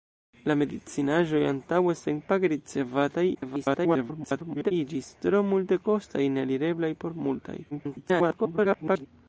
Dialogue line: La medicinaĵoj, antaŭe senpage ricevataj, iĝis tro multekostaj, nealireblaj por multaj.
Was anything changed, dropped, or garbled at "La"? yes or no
no